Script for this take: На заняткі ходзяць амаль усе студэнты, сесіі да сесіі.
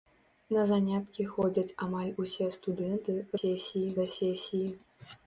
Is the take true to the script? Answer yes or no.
yes